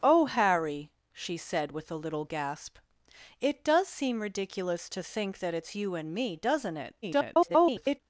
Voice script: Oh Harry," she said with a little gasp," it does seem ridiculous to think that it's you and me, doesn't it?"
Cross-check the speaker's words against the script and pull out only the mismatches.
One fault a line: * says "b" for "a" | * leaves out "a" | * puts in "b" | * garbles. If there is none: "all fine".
* garbles